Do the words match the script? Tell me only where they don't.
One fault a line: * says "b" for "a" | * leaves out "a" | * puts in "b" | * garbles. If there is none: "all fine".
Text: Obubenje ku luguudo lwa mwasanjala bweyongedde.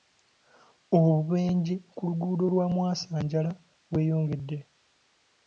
all fine